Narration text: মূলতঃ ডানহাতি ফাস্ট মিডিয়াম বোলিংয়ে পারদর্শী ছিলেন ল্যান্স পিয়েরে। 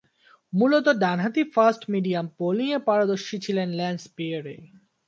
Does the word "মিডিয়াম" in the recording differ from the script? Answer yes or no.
no